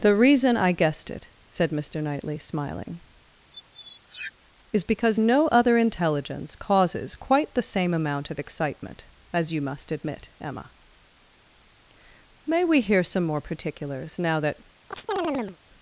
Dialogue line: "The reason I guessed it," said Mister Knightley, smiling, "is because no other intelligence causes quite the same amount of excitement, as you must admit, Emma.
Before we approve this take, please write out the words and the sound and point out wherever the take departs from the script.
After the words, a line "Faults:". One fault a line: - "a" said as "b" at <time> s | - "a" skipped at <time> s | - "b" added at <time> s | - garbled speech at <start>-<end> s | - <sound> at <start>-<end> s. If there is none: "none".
"The reason I guessed it," said Mister Knightley, smiling, "is because no other intelligence causes quite the same amount of excitement, as you must admit, Emma. May we hear some more particulars, now that
Faults:
- squeak at 3.5-4.3 s
- "May we hear some more particulars now that" added at 12.5 s
- chirp at 14.9-15.6 s